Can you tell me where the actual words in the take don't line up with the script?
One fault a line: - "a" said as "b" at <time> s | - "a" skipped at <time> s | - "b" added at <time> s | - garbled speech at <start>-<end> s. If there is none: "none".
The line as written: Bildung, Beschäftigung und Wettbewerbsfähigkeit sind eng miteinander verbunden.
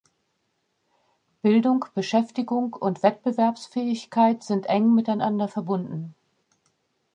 none